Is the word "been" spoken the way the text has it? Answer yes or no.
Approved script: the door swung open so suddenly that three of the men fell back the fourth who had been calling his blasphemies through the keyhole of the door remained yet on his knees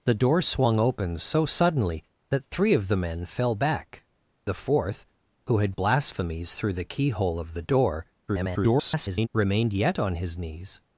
no